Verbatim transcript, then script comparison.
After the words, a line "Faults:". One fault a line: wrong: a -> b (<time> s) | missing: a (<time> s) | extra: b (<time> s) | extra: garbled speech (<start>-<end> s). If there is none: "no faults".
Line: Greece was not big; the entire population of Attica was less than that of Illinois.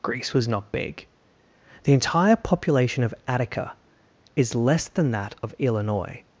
Greece was not big; the entire population of Attica is less than that of Illinois.
Faults:
wrong: was -> is (4.3 s)